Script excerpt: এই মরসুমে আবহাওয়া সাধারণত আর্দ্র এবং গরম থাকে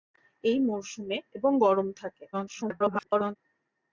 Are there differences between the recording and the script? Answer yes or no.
yes